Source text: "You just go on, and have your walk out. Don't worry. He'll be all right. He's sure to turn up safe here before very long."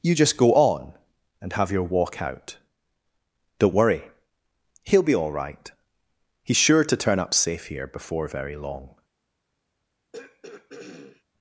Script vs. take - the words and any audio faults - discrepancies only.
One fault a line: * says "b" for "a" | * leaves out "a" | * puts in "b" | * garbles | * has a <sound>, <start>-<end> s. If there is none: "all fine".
* has a throat clearing, 10.1-11.2 s